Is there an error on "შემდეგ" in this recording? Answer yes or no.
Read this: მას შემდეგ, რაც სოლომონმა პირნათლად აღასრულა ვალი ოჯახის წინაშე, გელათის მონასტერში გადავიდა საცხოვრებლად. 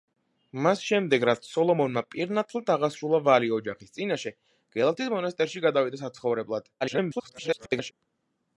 no